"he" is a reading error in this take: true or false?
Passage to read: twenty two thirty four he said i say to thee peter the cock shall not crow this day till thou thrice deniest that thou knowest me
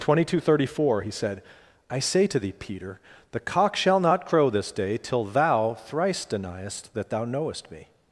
false